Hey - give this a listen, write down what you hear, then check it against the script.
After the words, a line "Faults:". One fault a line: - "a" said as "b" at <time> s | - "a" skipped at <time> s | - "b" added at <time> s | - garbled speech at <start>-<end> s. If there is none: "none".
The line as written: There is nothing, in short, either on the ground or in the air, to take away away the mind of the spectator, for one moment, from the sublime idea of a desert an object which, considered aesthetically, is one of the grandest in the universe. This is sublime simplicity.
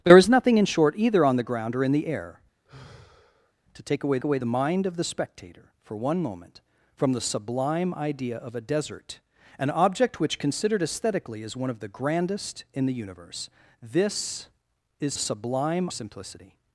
There is nothing, in short, either on the ground or in the air, to take away away the mind of the spectator, for one moment, from the sublime idea of a desert an object which, considered aesthetically, is one of the grandest in the universe. This is sublime simplicity.
Faults:
none